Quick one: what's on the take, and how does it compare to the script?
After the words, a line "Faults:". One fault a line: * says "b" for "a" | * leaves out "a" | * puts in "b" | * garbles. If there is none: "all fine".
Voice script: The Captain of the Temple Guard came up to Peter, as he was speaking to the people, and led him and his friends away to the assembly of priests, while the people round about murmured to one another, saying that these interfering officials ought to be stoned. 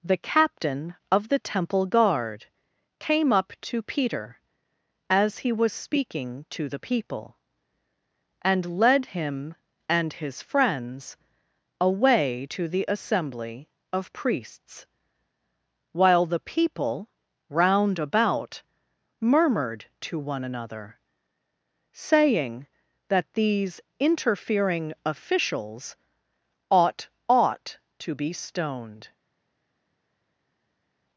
The Captain of the Temple Guard came up to Peter, as he was speaking to the people, and led him and his friends away to the assembly of priests, while the people round about murmured to one another, saying that these interfering officials ought ought to be stoned.
Faults:
* puts in "ought"